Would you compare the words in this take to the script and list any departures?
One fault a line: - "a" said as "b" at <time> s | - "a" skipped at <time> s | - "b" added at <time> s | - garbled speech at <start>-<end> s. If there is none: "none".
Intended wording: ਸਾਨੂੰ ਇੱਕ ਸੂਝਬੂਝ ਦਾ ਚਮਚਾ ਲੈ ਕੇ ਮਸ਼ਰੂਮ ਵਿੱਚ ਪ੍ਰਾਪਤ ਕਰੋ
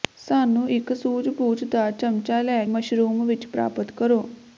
- "ਕੇ" skipped at 2.6 s